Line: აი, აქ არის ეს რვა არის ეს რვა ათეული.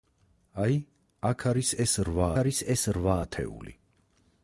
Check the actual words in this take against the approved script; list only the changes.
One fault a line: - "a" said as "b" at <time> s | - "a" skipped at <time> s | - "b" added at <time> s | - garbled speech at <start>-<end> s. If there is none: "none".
none